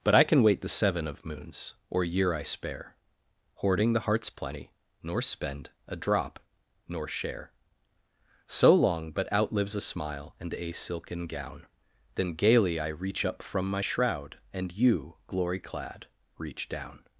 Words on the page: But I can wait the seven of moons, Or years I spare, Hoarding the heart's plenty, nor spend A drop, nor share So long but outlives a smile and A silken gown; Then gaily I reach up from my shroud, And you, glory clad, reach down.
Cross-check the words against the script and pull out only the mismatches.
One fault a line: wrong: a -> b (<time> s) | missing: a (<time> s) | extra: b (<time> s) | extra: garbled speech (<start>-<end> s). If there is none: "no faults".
wrong: years -> year (2.0 s)